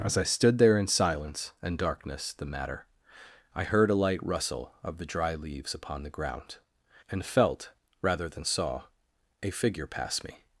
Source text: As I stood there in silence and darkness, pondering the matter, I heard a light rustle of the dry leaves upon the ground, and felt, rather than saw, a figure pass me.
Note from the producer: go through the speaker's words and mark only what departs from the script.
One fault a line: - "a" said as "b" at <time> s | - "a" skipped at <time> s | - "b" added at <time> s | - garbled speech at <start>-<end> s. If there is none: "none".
- "pondering" skipped at 2.3 s